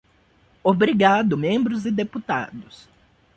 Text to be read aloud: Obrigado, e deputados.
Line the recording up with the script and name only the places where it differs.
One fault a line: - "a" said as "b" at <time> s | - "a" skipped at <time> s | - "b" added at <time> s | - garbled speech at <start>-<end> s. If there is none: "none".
- "membros" added at 1.3 s